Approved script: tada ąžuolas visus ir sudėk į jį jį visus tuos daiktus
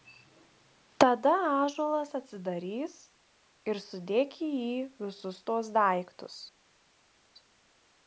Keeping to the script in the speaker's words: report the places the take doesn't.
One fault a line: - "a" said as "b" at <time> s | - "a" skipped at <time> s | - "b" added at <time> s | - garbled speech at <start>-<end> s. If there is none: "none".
- "visus" said as "atsidarys" at 2.2 s
- "jį" skipped at 4.8 s